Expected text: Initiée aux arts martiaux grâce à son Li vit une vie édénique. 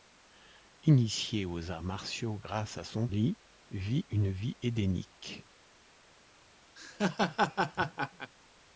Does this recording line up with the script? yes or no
yes